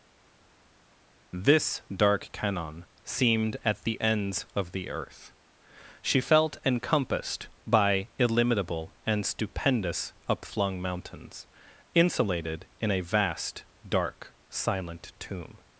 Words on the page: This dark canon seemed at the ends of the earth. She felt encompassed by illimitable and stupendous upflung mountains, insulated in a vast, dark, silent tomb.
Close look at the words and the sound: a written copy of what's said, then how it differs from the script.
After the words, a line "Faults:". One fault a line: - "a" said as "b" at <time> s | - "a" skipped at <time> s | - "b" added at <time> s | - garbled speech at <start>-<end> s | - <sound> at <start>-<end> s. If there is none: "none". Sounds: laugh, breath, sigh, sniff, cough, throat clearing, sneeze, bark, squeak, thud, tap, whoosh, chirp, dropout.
This dark canon seemed at the ends of the earth. She felt encompassed by illimitable and stupendous upflung mountains, insulated in a vast, dark, silent tomb.
Faults:
none